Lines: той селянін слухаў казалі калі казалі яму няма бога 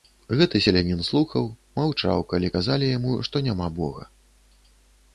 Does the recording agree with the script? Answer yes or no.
no